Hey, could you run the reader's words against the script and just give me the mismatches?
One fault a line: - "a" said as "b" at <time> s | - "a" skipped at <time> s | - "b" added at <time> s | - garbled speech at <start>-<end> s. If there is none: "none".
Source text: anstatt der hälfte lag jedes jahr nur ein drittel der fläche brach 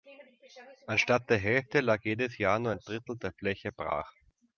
none